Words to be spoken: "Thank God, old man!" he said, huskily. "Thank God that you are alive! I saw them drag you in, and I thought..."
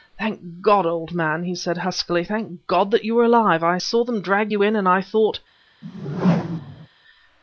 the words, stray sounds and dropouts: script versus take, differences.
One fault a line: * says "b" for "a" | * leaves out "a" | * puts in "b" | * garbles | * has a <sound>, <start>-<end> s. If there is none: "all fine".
* has a whoosh, 5.8-6.9 s